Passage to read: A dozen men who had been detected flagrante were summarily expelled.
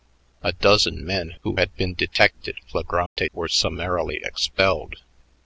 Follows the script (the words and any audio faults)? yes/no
no